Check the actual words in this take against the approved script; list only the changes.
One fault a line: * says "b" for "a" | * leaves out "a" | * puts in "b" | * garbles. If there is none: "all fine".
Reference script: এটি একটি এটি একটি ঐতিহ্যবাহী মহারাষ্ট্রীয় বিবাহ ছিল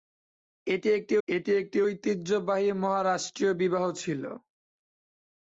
all fine